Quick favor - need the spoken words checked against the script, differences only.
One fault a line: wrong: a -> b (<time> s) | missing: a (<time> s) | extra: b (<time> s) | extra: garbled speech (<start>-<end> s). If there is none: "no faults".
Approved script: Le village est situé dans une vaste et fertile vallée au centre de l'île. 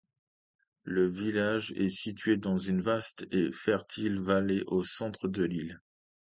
no faults